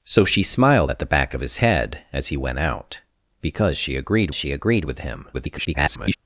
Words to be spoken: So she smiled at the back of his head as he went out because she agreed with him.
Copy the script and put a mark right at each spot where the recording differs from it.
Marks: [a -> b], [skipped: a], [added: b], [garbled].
So she smiled at the back of his head as he went out because she agreed [added: she agreed] with him. [garbled]